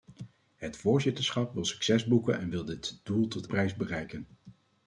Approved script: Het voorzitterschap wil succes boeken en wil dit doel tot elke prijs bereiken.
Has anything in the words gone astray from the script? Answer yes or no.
yes